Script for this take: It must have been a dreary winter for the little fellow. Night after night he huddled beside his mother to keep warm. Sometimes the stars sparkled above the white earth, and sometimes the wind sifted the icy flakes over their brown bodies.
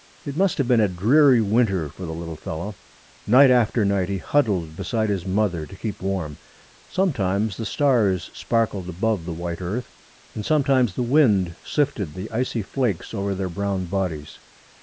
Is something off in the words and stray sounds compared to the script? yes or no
no